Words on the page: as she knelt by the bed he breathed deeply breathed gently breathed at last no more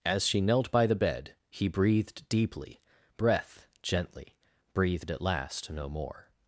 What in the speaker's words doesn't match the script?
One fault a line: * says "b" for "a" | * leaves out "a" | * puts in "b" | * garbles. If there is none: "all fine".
* says "breath" for "breathed"